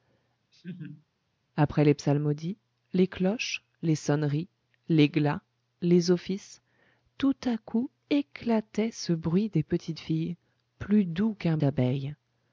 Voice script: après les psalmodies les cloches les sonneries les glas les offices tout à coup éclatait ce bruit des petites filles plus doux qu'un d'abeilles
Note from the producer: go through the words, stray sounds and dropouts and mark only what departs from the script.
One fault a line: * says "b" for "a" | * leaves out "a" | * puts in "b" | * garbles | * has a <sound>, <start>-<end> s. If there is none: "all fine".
* has a laugh, 0.5-1.1 s